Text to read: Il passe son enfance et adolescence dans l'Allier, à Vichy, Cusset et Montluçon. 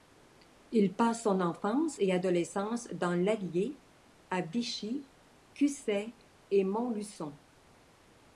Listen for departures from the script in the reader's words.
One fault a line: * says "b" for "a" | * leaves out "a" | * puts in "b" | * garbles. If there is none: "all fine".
all fine